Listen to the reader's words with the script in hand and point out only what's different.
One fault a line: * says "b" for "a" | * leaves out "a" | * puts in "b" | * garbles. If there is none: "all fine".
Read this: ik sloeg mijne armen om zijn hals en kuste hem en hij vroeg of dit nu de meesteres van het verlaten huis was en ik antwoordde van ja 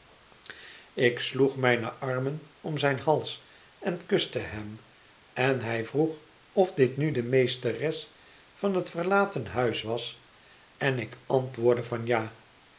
all fine